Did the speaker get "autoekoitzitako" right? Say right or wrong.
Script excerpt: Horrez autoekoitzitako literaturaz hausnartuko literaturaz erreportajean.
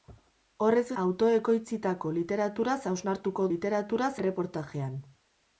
right